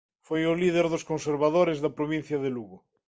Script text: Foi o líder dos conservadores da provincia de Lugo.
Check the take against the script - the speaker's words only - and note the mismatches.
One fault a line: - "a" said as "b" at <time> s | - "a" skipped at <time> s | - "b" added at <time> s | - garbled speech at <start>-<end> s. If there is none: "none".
none